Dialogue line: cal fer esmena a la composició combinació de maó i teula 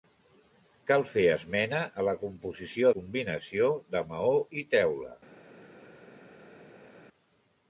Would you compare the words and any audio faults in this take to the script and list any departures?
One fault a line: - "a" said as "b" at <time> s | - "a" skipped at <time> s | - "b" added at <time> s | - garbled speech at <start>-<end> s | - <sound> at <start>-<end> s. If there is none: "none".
none